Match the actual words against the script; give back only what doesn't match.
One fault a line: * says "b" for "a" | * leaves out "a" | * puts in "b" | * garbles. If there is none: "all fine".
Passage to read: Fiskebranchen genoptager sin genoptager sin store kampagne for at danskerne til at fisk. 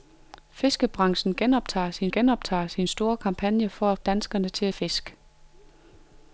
all fine